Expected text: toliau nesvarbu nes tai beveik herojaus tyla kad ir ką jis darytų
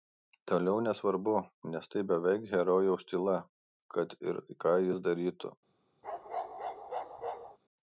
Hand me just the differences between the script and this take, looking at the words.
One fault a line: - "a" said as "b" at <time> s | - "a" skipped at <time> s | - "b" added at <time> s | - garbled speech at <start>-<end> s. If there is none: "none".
none